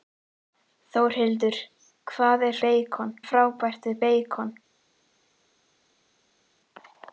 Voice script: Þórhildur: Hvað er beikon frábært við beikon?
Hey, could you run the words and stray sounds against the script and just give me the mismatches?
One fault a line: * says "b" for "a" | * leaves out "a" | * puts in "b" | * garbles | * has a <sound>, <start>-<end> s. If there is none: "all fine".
all fine